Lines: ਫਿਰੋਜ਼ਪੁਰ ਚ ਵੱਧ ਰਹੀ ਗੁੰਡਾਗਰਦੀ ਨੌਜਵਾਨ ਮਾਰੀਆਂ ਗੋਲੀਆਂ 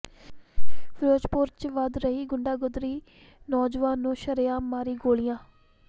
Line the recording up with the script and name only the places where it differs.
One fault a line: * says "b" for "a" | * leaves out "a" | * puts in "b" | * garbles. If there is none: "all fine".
* puts in "ਨੂੰ ਸ਼ਰੇਆਮ"